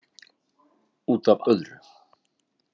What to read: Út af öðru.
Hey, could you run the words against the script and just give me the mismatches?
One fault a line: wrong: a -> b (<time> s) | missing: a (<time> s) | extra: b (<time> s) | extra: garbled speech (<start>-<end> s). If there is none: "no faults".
no faults